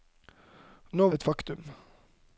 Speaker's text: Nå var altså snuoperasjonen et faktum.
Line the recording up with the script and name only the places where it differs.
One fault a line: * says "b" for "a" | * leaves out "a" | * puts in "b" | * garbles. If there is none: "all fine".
* leaves out "var altså snuoperasjonen"